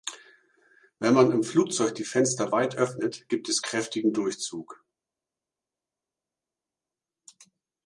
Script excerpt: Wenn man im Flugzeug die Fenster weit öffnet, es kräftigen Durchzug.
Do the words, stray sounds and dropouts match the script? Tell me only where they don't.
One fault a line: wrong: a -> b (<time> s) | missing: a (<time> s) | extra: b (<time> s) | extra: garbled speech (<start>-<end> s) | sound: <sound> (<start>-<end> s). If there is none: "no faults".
extra: gibt (3.3 s)